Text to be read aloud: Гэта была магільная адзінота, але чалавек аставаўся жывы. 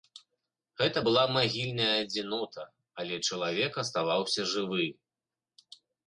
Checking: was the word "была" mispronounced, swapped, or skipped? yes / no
no